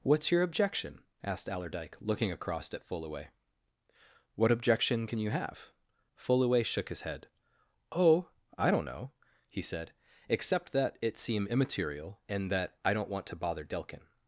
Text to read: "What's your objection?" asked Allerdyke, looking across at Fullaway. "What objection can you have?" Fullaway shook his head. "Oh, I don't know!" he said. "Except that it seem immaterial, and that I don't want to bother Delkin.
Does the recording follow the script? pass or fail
pass